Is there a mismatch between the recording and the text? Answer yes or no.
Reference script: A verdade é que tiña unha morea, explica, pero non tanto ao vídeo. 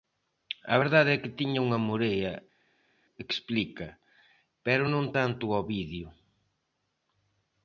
no